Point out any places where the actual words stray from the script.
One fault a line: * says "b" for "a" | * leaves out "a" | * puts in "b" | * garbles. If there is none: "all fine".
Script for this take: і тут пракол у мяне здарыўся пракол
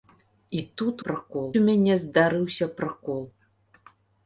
all fine